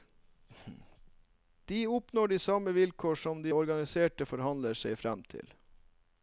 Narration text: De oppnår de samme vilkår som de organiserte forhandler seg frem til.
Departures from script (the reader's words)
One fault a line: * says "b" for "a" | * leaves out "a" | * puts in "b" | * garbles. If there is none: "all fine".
all fine